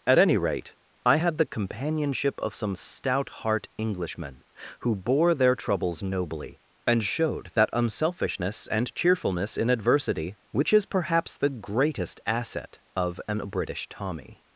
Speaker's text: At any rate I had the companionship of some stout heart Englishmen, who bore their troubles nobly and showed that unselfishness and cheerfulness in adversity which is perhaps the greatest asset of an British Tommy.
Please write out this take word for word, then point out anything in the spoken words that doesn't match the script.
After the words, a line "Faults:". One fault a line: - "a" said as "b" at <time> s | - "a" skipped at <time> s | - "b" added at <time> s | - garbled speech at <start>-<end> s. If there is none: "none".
At any rate I had the companionship of some stout heart Englishmen, who bore their troubles nobly and showed that unselfishness and cheerfulness in adversity which is perhaps the greatest asset of an British Tommy.
Faults:
none